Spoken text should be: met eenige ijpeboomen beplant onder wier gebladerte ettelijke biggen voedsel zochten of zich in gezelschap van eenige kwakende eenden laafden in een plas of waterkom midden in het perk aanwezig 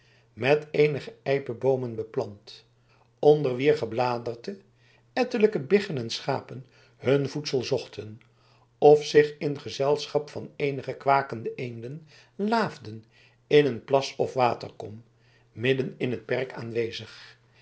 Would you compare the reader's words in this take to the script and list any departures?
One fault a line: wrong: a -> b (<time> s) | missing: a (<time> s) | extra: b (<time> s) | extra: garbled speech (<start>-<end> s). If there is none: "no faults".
extra: en schapen hun (6.0 s)